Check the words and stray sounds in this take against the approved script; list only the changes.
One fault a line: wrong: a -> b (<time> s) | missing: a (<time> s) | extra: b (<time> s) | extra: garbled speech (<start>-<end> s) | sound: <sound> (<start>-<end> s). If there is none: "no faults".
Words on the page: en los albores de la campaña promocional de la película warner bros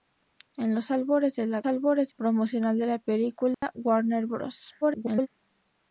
wrong: campaña -> albores (1.6 s)
sound: dropout (3.5-3.6 s)
extra: garbled speech (4.8-5.3 s)